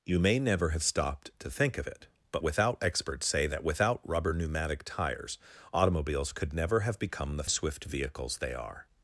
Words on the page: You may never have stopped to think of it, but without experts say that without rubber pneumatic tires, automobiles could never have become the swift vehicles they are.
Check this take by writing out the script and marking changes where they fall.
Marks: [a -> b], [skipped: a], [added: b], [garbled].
You may never have stopped to think of it, but without experts say that without rubber pneumatic tires, automobiles could never have become the swift vehicles they are.